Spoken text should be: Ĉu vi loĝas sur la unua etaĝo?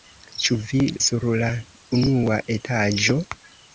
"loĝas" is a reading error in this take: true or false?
true